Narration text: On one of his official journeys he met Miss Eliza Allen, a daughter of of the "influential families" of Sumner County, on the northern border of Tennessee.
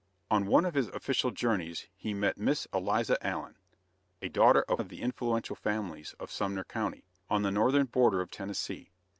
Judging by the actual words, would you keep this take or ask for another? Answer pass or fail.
pass